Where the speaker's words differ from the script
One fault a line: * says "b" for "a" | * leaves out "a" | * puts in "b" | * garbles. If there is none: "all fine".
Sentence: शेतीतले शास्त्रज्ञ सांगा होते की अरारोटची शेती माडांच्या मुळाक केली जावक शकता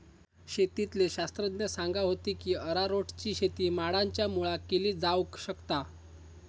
all fine